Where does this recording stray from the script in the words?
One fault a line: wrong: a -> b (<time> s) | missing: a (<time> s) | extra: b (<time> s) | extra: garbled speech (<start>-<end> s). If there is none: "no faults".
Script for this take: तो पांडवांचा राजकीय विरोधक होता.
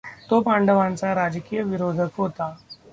no faults